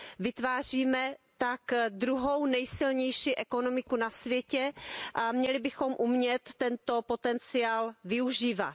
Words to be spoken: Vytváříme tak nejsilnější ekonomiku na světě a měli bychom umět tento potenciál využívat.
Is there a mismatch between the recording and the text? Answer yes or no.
yes